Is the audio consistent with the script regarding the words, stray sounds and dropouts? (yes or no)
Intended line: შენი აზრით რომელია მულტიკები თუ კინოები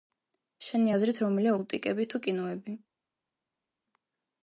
yes